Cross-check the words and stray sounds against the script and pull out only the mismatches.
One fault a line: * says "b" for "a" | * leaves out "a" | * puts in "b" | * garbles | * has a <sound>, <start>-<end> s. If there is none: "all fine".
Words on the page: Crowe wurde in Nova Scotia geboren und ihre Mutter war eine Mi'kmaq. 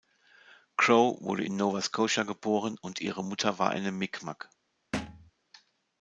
* has a thud, 4.9-5.3 s